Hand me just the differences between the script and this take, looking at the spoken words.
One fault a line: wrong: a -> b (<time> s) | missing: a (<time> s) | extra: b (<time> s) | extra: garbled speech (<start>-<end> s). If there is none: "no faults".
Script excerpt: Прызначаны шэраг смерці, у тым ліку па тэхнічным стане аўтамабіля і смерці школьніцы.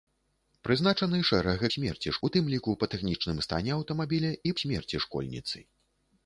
no faults